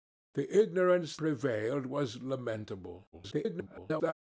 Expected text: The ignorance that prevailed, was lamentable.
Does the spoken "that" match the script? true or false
false